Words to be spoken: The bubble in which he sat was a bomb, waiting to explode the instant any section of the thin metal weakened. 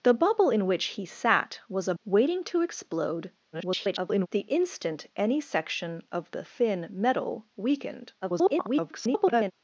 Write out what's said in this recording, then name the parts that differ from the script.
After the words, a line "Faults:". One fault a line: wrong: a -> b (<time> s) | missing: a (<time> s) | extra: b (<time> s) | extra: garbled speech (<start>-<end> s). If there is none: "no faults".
The bubble in which he sat was a waiting to explode [garbled] the instant any section of the thin metal weakened. [garbled]
Faults:
missing: bomb (1.9 s)
extra: garbled speech (3.5-4.3 s)
extra: garbled speech (8.2-9.5 s)